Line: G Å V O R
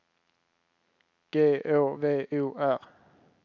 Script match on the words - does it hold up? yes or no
yes